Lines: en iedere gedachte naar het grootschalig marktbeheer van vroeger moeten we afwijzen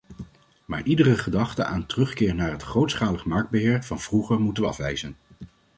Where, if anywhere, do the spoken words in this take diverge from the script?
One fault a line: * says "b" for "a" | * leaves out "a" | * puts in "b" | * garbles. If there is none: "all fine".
* says "maar" for "en"
* puts in "aan terugkeer"